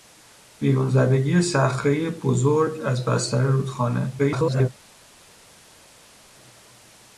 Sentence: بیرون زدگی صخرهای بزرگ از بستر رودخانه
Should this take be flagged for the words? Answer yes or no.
yes